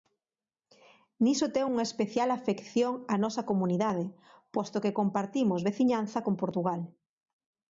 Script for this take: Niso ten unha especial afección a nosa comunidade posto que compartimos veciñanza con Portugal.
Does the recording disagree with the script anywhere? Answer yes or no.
no